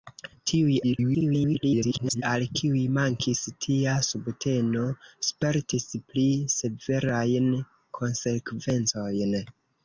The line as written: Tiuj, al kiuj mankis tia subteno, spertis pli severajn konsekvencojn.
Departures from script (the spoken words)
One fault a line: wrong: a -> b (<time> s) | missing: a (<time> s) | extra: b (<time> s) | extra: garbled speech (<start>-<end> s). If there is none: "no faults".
extra: garbled speech (0.8-2.2 s)